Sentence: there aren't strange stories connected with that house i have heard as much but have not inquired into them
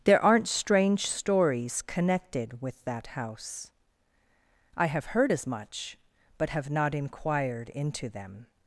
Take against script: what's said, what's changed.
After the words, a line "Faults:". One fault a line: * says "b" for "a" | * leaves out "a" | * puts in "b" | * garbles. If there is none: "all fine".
there aren't strange stories connected with that house i have heard as much but have not inquired into them
Faults:
all fine